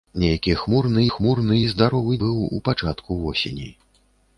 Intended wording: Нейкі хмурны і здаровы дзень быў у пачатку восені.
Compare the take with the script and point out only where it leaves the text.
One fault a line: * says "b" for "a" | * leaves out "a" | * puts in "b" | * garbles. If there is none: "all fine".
* puts in "хмурны"
* leaves out "дзень"